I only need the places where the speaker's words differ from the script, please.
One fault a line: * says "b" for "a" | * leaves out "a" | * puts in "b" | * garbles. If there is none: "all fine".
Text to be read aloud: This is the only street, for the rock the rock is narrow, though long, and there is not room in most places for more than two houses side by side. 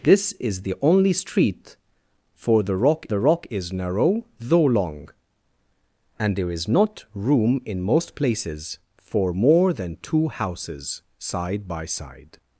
all fine